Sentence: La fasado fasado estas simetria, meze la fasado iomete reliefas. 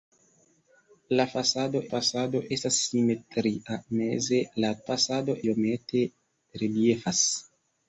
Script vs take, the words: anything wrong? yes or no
no